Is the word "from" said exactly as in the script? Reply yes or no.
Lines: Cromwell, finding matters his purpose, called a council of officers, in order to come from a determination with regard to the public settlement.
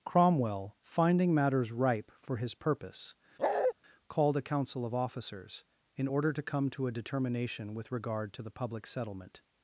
no